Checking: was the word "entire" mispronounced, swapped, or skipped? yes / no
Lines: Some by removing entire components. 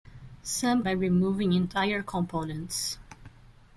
no